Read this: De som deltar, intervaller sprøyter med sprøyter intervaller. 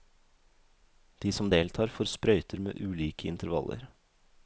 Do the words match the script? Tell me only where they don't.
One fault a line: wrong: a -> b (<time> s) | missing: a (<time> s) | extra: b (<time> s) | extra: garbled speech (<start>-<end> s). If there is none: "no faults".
wrong: intervaller -> får (1.9 s)
wrong: sprøyter -> ulike (2.8 s)